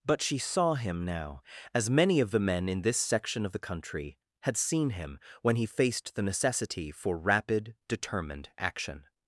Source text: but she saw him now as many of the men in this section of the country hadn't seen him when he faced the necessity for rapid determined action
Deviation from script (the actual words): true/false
true